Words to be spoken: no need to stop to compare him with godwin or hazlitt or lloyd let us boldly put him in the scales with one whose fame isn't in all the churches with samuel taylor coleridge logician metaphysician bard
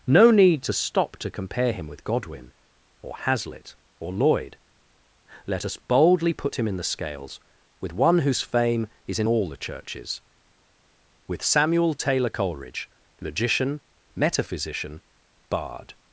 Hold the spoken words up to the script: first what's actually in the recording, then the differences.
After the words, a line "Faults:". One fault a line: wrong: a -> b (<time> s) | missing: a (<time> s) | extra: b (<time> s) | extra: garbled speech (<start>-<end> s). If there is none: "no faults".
no need to stop to compare him with godwin or hazlitt or lloyd let us boldly put him in the scales with one whose fame is in all the churches with samuel taylor coleridge logician metaphysician bard
Faults:
wrong: isn't -> is (9.1 s)